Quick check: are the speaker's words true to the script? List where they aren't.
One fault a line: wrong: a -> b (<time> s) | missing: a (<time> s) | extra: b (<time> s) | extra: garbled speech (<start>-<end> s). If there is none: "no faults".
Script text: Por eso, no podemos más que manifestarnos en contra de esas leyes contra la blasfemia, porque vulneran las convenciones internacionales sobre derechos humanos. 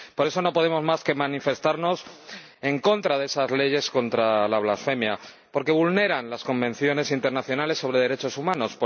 no faults